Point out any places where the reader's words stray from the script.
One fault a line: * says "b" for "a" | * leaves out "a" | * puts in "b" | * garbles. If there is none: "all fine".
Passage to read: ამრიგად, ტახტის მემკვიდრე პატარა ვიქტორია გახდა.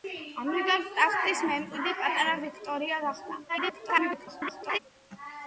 * garbles